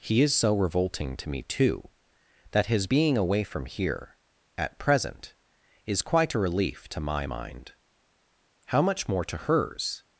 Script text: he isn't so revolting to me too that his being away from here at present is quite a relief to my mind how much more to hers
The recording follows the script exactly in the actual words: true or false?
false